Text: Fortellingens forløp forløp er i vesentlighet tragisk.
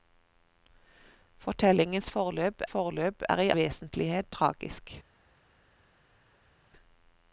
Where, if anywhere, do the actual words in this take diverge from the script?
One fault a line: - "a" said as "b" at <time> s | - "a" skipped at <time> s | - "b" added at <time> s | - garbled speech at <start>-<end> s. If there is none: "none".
none